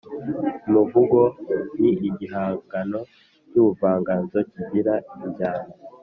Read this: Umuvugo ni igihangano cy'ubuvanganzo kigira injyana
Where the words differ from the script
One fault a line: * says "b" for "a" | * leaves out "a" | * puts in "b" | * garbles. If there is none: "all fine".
all fine